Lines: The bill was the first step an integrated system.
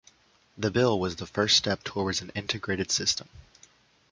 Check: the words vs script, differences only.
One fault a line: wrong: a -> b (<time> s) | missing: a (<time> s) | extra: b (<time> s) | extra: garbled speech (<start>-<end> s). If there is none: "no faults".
extra: towards (1.8 s)